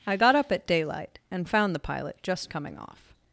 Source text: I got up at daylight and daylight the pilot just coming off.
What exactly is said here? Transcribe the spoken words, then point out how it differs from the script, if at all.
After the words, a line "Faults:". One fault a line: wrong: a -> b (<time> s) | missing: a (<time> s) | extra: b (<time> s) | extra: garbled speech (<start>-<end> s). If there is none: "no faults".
I got up at daylight and found the pilot just coming off.
Faults:
wrong: daylight -> found (1.5 s)